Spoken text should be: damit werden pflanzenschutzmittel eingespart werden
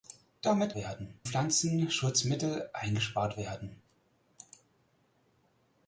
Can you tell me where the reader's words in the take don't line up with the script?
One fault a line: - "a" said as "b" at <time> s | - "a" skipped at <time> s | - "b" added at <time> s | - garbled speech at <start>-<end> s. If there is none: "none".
none